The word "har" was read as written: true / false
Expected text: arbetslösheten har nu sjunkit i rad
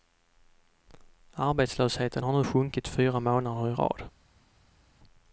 true